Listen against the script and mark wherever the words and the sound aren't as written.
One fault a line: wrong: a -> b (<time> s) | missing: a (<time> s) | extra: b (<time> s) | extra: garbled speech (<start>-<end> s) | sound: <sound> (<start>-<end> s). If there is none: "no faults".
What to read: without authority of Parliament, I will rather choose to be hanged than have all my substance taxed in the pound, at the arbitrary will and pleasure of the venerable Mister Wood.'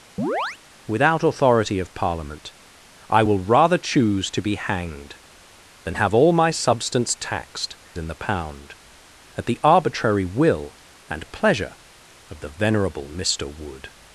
sound: chirp (0.2-0.6 s)